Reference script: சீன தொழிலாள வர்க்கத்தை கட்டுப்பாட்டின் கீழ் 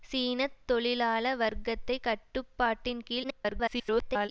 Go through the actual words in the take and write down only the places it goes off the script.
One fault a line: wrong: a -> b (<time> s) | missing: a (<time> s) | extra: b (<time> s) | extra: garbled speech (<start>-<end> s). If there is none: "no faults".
extra: garbled speech (3.2-4.3 s)